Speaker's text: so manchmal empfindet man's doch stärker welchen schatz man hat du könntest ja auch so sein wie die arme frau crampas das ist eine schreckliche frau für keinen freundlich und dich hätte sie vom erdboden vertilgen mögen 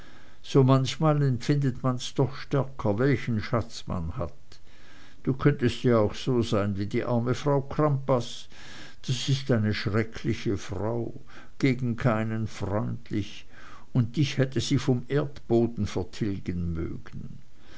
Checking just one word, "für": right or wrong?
wrong